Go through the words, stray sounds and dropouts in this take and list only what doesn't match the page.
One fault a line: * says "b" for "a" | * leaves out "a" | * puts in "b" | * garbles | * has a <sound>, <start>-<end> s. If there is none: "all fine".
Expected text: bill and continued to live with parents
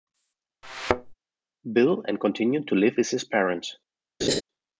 * has a thud, 0.6-1.1 s
* puts in "his"
* has a laugh, 4.2-4.4 s